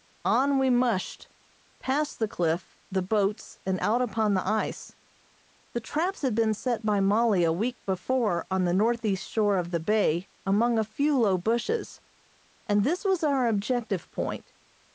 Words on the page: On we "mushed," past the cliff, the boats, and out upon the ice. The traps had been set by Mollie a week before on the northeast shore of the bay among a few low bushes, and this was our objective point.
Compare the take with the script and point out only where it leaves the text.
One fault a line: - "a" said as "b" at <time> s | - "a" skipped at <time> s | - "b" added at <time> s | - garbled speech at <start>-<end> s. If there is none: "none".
none